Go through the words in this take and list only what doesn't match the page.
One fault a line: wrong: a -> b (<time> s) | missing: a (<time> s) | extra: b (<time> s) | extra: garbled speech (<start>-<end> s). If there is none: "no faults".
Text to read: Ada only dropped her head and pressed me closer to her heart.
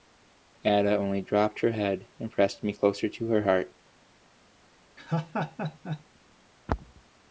no faults